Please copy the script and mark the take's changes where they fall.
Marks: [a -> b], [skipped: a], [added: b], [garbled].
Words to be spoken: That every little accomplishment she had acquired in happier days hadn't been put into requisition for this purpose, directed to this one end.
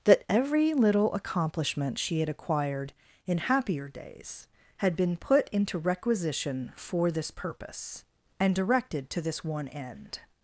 That every little accomplishment she had acquired in happier days [hadn't -> had] been put into requisition for this purpose, [added: and] directed to this one end.